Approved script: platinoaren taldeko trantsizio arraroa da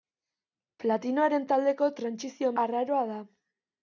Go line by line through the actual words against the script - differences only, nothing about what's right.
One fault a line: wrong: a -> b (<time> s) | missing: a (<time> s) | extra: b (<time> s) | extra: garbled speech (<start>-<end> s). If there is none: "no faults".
no faults